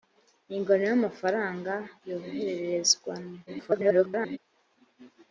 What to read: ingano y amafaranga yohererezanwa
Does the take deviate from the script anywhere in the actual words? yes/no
yes